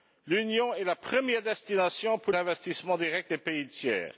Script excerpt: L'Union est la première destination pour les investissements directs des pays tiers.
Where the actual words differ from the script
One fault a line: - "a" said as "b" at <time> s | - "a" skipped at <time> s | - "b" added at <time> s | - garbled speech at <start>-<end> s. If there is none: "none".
- "les" skipped at 2.3 s